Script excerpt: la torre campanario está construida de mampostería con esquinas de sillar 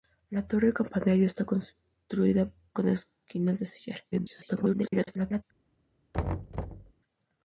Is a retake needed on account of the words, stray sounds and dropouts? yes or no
yes